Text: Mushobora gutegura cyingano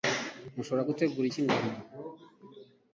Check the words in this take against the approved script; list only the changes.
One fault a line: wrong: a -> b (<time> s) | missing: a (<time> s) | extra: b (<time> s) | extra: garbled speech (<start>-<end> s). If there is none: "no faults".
no faults